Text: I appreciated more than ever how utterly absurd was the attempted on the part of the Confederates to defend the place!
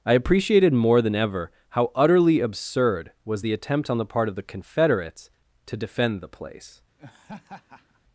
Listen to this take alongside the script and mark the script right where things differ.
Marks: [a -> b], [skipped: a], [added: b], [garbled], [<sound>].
I appreciated more than ever how utterly absurd was the [attempted -> attempt] on the part of the Confederates to defend the place! [laugh]